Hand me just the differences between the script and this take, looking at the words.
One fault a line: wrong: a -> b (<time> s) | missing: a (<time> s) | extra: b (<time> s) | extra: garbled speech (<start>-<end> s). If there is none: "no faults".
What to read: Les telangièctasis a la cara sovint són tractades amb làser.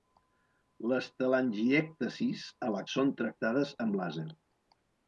missing: cara sovint (2.8 s)